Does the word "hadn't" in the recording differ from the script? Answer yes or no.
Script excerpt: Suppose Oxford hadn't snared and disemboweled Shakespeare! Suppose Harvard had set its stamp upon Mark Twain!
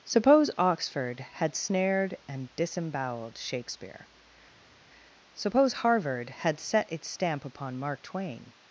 yes